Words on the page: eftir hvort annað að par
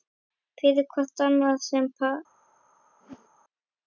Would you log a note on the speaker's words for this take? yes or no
yes